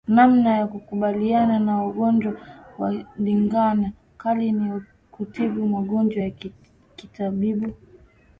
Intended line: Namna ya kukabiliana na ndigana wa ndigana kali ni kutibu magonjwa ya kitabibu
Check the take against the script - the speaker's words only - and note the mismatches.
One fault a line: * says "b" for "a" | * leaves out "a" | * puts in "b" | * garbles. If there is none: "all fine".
* says "ugonjwa" for "ndigana"